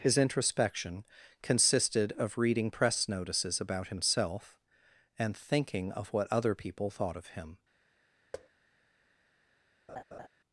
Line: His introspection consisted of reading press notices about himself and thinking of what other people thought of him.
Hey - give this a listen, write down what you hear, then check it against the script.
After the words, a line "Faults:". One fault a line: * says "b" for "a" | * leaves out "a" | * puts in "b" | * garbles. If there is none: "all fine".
His introspection consisted of reading press notices about himself and thinking of what other people thought of him.
Faults:
all fine